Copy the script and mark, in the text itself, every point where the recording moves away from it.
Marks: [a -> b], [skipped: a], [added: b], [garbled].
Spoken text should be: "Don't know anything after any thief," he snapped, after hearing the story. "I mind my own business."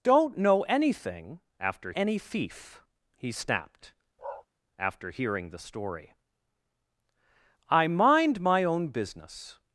"Don't know anything after any thief," he snapped, after hearing the story. "I mind my own business."